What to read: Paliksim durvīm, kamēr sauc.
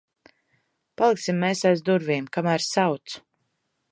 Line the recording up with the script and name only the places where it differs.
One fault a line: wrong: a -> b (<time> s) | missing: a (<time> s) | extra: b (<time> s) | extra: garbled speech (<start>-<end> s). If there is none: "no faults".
extra: mēs aiz (1.4 s)